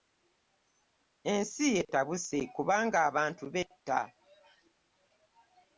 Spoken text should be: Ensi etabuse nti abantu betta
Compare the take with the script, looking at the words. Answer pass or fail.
fail